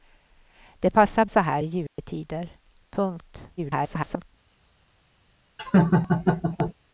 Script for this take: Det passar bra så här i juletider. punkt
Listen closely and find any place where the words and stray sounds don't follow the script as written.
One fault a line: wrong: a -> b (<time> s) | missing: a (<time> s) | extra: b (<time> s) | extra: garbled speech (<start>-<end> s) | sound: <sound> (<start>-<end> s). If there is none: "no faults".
missing: bra (1.2 s)
sound: dropout (1.9-2.0 s)
extra: garbled speech (3.6-4.3 s)
sound: laugh (5.6-6.7 s)